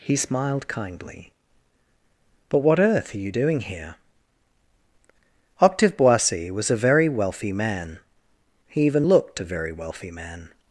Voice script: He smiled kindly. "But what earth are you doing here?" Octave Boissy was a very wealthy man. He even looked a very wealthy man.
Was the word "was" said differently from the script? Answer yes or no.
no